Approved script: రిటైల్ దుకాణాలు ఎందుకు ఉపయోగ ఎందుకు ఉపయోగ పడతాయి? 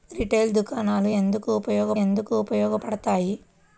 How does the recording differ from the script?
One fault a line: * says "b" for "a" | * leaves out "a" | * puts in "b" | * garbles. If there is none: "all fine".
all fine